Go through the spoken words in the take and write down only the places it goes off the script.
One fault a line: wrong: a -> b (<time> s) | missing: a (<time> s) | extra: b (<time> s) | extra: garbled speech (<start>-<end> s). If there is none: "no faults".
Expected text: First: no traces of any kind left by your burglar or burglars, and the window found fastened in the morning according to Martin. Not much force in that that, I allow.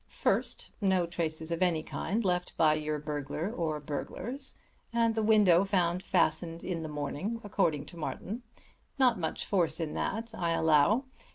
missing: that (10.3 s)